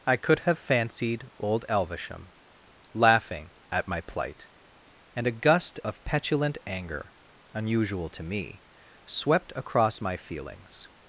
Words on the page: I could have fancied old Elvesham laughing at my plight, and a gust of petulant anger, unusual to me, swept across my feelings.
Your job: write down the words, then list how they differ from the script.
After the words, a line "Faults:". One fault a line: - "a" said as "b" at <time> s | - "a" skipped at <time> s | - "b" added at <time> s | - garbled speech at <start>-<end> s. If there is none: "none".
I could have fancied old Elvesham laughing at my plight, and a gust of petulant anger, unusual to me, swept across my feelings.
Faults:
none